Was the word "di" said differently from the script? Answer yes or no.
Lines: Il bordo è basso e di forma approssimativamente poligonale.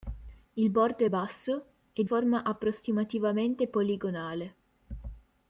yes